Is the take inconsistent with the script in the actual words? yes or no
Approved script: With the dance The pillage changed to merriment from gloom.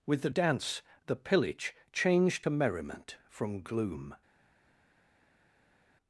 no